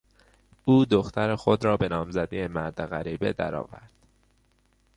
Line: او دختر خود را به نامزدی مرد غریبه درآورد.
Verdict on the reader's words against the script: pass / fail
pass